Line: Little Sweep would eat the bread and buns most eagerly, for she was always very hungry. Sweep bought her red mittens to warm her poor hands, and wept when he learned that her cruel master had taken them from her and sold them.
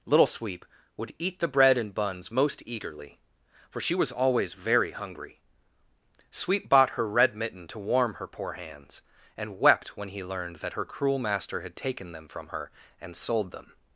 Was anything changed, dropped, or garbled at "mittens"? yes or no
yes